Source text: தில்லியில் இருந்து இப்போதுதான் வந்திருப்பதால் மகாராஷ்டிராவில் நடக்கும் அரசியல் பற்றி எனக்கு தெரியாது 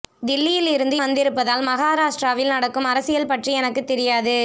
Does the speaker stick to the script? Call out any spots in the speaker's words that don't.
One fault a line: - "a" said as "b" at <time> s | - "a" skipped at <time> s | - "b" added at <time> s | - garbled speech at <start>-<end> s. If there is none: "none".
- "இப்போதுதான்" skipped at 0.9 s